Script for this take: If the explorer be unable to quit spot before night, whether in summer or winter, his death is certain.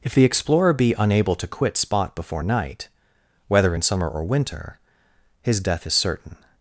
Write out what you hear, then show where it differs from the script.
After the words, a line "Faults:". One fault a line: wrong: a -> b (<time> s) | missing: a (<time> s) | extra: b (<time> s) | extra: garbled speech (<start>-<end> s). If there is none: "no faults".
If the explorer be unable to quit spot before night, whether in summer or winter, his death is certain.
Faults:
no faults